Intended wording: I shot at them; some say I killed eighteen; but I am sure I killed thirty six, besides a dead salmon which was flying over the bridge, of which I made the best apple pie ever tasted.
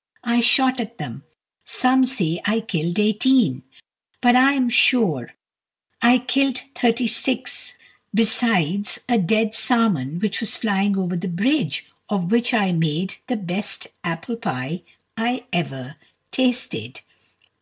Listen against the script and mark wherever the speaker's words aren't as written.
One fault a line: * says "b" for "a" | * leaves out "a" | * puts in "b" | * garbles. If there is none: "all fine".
* puts in "I"